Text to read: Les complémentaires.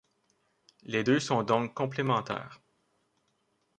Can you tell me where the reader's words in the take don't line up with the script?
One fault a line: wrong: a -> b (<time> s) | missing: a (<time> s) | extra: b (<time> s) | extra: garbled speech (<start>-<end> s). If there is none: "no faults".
extra: deux sont donc (1.0 s)